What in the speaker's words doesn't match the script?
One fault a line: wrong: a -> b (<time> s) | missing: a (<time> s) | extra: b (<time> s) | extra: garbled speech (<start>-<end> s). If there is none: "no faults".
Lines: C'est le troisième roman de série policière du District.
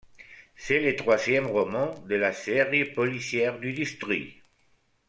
extra: la (2.1 s)